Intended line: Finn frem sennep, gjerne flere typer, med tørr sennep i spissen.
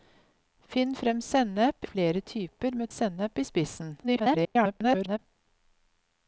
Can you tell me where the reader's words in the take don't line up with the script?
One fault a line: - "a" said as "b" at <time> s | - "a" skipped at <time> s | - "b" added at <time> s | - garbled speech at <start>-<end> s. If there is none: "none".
- "gjerne" skipped at 1.9 s
- "tørr" skipped at 2.9 s
- garbled speech at 4.0-5.2 s